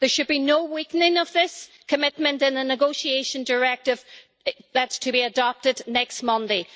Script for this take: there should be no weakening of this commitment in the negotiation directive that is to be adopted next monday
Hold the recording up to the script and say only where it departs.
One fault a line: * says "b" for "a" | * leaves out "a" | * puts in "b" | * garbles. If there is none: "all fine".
all fine